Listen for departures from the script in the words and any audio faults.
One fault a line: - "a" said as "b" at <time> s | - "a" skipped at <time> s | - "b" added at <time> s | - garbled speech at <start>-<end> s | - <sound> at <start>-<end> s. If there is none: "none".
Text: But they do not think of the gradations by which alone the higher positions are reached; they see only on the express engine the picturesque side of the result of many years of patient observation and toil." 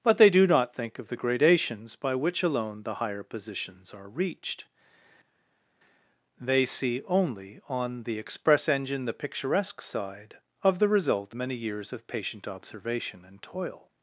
- "of" skipped at 11.3 s